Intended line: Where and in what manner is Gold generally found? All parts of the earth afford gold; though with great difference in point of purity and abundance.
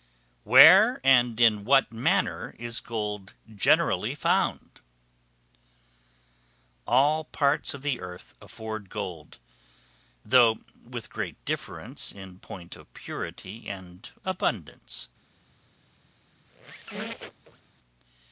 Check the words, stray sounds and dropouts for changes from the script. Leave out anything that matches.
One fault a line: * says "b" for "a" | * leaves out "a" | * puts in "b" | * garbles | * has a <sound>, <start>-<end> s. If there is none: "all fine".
* has a squeak, 16.4-17.7 s